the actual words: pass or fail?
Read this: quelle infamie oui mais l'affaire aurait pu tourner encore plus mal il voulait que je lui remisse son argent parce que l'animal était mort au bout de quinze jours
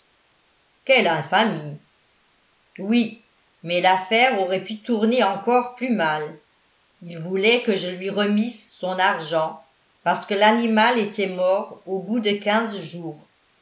pass